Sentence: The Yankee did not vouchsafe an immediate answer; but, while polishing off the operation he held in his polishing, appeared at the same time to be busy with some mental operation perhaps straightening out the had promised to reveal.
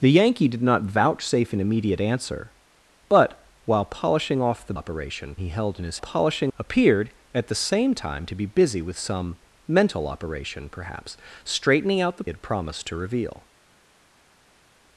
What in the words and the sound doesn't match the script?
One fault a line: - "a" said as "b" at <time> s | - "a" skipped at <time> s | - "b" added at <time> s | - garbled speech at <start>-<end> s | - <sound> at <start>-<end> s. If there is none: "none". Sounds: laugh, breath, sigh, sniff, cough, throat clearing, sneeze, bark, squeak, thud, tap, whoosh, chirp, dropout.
none